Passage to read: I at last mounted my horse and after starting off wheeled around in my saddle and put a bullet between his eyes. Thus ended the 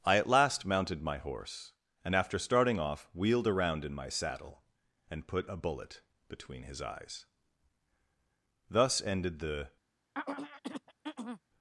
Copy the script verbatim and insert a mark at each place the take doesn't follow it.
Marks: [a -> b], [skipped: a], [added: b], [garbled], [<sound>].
I at last mounted my horse and after starting off wheeled around in my saddle and put a bullet between his eyes. Thus ended the [throat clearing]